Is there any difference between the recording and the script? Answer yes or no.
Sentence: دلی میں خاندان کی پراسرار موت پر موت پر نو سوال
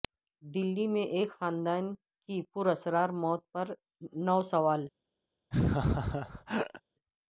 yes